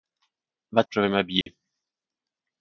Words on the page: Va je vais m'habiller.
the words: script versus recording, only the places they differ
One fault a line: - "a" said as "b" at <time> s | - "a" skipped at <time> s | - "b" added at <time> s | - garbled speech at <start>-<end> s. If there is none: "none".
none